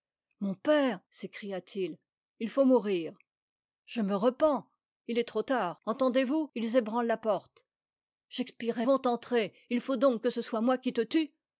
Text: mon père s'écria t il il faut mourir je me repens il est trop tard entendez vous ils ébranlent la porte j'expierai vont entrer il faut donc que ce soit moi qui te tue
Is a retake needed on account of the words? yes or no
no